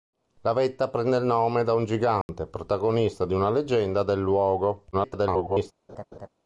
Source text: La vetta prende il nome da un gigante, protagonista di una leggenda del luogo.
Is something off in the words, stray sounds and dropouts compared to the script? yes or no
yes